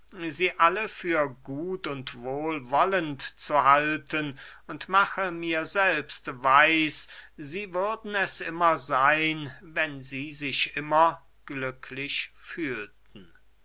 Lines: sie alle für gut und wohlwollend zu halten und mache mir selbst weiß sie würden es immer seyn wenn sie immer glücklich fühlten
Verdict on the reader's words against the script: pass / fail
fail